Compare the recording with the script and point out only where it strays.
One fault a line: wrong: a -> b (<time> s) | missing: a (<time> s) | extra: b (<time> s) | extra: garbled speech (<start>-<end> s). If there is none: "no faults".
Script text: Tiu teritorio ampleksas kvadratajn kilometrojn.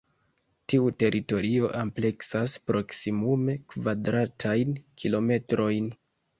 extra: proksimume (2.7 s)